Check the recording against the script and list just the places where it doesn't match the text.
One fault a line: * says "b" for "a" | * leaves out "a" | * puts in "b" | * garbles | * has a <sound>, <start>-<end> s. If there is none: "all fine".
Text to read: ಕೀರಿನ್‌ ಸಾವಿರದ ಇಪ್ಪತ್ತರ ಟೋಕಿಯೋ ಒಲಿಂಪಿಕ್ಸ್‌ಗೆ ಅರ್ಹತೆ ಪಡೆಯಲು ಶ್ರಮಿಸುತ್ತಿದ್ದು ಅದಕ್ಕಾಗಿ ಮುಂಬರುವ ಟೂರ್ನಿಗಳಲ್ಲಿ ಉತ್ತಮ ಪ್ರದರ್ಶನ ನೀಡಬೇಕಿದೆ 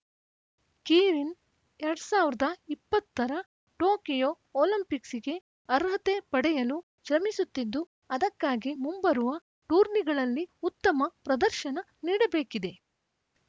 * puts in "ಎರಡ್"